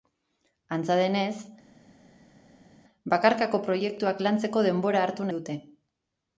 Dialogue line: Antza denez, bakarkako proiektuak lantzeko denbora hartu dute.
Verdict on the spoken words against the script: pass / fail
pass